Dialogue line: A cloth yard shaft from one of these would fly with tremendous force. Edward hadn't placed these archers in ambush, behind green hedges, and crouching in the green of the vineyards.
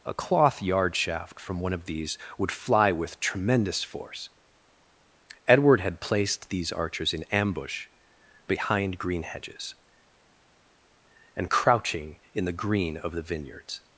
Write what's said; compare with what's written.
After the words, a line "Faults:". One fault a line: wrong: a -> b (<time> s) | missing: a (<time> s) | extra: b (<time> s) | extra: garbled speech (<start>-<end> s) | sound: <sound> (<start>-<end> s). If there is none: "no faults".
A cloth yard shaft from one of these would fly with tremendous force. Edward had placed these archers in ambush, behind green hedges, and crouching in the green of the vineyards.
Faults:
wrong: hadn't -> had (5.8 s)